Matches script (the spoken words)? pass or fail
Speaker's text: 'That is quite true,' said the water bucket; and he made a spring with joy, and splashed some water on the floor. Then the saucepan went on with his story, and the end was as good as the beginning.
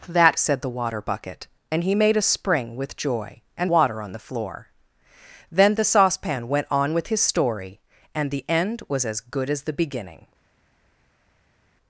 fail